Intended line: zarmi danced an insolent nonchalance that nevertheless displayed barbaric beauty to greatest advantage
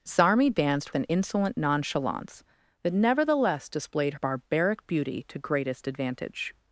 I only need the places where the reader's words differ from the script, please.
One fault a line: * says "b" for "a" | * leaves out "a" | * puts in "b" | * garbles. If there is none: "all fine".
all fine